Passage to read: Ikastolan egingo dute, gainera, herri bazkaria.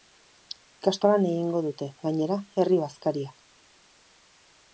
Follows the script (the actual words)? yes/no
yes